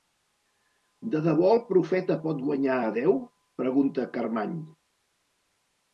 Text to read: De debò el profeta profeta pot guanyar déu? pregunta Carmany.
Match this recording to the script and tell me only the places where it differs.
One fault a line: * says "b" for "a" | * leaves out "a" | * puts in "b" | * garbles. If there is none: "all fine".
* leaves out "profeta"
* puts in "a"